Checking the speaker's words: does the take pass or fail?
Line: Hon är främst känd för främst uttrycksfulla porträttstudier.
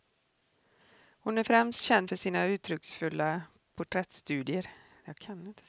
fail